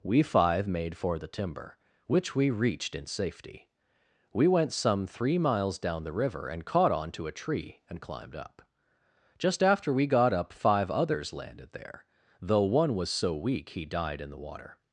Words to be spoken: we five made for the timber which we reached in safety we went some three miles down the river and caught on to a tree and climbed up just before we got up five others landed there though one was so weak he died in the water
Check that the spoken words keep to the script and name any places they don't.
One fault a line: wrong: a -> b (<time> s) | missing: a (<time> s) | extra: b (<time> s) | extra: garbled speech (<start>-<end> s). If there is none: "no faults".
wrong: before -> after (9.6 s)